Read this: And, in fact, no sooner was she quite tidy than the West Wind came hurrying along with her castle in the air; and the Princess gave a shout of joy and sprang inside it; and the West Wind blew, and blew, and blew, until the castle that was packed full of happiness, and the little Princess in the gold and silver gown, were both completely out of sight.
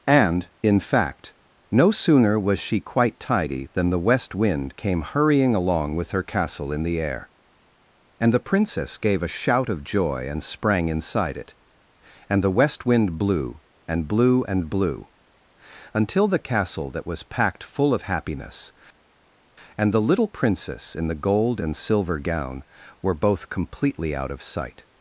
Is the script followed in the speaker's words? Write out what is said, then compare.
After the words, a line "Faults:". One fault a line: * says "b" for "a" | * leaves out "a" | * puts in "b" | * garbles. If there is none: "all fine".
And, in fact, no sooner was she quite tidy than the West Wind came hurrying along with her castle in the air; and the Princess gave a shout of joy and sprang inside it; and the West Wind blew, and blew, and blew, until the castle that was packed full of happiness, and the little Princess in the gold and silver gown, were both completely out of sight.
Faults:
all fine